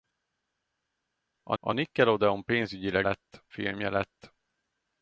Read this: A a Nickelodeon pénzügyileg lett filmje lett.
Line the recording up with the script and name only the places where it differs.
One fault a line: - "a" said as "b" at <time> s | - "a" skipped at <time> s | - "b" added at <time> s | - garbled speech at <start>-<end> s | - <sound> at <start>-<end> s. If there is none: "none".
none